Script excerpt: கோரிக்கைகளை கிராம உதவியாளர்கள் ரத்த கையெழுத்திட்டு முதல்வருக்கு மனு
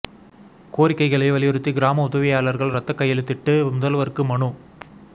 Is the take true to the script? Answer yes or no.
no